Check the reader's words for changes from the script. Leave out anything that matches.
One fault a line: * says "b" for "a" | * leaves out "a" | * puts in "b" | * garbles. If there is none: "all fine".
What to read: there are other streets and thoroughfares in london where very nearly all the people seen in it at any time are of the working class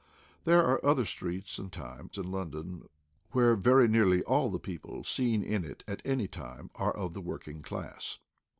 * says "time" for "thoroughfares"